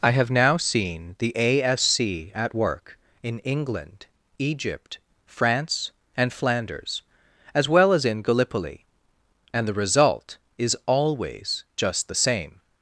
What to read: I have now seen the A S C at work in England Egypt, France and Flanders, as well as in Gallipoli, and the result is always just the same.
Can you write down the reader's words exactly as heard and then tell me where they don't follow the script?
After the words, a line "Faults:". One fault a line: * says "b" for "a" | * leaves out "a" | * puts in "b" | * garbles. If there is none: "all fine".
I have now seen the A S C at work in England Egypt, France and Flanders, as well as in Gallipoli, and the result is always just the same.
Faults:
all fine